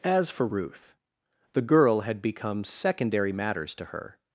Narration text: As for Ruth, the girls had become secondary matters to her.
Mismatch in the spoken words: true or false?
true